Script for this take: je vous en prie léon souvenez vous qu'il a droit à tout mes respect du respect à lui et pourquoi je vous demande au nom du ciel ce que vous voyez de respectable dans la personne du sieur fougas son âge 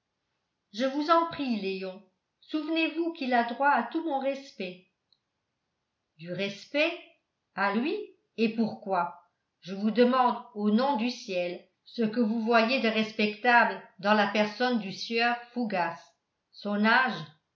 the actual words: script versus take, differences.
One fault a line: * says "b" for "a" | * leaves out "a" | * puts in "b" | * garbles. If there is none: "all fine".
* says "mon" for "mes"